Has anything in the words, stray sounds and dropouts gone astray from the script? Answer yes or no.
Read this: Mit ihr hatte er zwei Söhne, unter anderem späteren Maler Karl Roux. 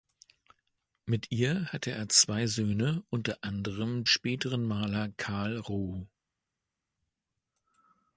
no